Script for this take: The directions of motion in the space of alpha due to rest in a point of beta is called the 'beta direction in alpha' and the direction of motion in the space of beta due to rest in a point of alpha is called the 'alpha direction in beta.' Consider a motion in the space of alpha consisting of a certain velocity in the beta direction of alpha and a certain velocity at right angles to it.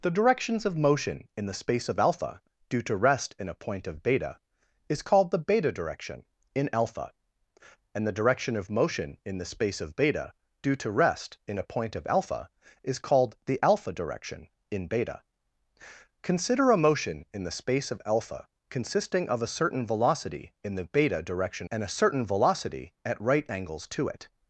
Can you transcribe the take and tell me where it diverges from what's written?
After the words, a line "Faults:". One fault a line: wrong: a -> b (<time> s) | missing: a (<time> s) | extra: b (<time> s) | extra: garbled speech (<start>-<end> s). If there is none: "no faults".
The directions of motion in the space of alpha due to rest in a point of beta is called the 'beta direction in alpha' and the direction of motion in the space of beta due to rest in a point of alpha is called the 'alpha direction in beta.' Consider a motion in the space of alpha consisting of a certain velocity in the beta direction and a certain velocity at right angles to it.
Faults:
missing: of alpha (21.7 s)